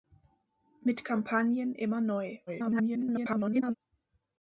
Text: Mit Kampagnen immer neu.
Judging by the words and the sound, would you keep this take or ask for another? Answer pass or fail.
fail